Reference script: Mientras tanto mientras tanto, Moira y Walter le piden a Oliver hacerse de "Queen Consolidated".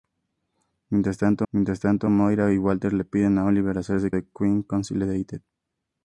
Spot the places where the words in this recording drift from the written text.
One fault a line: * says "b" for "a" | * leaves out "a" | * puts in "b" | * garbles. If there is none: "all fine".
all fine